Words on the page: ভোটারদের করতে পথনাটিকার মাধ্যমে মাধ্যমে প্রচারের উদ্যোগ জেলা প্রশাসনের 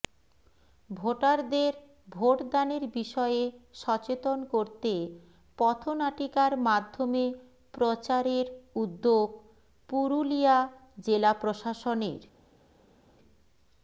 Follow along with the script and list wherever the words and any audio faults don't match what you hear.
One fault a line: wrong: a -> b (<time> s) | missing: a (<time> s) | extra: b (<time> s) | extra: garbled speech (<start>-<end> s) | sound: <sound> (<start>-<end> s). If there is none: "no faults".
extra: ভোটদানের বিষয়ে সচেতন (2.1 s)
missing: মাধ্যমে (7.2 s)
extra: পুরুলিয়া (9.9 s)